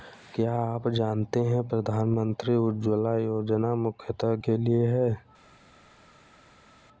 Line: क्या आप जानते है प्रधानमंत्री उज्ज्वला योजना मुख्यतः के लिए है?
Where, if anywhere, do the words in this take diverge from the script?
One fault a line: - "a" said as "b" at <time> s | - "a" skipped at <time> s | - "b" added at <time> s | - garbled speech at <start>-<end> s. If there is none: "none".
none